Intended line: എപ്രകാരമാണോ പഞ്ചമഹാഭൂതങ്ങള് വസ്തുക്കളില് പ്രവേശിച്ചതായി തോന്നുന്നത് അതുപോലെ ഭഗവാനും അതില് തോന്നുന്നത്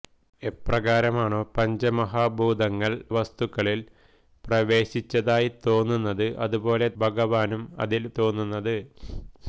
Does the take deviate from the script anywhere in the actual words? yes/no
no